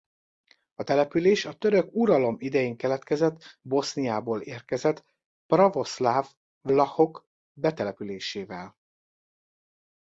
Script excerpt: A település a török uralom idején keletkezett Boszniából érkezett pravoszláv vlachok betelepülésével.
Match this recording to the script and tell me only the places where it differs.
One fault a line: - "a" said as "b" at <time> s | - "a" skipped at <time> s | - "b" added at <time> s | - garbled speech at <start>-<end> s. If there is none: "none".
none